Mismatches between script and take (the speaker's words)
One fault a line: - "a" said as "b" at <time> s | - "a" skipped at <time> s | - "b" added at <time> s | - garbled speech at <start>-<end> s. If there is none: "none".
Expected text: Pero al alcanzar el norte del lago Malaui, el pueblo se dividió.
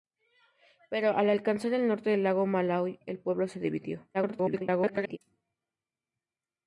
- garbled speech at 4.1-5.2 s